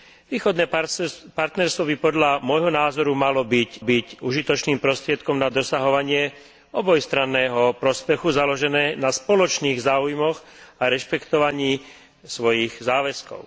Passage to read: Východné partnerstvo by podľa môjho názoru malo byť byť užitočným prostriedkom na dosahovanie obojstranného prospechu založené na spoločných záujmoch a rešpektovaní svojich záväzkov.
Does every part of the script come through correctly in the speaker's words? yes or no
yes